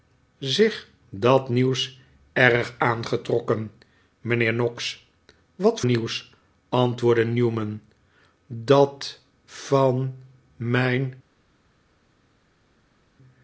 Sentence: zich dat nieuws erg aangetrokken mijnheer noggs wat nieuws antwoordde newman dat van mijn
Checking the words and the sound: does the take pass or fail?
pass